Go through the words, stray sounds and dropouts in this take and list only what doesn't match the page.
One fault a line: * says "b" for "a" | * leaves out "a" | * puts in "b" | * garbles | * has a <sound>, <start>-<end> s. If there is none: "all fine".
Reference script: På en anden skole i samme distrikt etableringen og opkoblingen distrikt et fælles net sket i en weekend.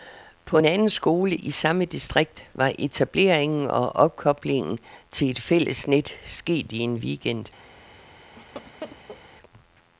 * puts in "var"
* says "til" for "distrikt"
* has a laugh, 8.4-9.2 s